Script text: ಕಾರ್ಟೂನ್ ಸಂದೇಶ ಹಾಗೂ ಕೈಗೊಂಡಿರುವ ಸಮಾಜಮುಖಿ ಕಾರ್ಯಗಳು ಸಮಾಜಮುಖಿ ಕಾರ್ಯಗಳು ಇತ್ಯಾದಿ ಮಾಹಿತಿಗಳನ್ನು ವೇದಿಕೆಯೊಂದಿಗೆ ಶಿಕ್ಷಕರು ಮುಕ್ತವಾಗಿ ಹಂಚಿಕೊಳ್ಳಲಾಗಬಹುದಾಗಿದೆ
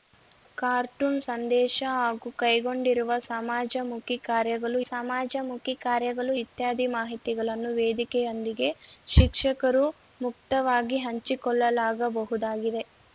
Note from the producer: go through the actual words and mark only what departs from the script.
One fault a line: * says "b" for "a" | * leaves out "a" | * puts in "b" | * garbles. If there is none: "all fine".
all fine